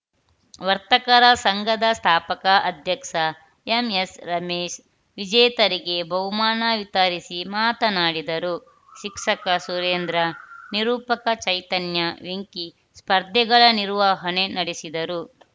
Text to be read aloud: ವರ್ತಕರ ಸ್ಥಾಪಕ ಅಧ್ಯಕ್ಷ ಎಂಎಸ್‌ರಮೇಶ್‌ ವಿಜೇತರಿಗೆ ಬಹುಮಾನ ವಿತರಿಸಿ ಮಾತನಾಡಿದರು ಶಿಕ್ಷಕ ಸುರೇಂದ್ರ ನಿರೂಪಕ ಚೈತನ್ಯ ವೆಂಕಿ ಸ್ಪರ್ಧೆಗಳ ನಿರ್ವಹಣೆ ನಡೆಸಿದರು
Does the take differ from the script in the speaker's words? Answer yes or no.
yes